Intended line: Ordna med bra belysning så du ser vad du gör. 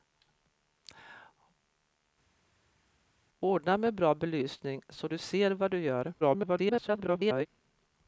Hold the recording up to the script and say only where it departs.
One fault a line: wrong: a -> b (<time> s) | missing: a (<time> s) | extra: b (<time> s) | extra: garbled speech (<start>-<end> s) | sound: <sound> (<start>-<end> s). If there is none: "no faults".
extra: garbled speech (6.2-7.5 s)